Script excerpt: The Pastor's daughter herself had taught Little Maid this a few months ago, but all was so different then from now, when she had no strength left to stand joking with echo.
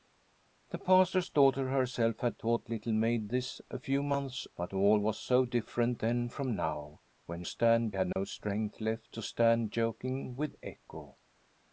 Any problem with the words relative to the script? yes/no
yes